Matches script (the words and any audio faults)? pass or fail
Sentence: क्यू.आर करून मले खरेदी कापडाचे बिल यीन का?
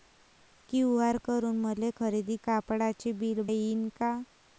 pass